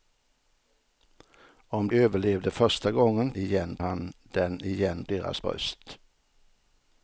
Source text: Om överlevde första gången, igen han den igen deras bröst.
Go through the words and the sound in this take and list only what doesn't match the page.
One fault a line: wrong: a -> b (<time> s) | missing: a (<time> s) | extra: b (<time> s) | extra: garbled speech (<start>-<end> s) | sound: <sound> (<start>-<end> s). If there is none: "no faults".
no faults